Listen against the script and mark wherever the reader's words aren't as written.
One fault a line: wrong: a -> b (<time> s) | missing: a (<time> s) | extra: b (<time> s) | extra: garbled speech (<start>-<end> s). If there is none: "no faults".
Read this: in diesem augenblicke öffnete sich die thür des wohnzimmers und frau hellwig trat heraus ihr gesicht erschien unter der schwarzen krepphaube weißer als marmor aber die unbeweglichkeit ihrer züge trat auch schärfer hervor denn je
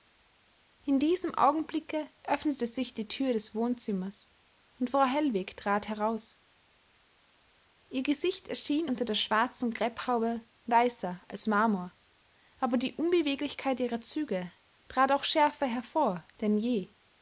no faults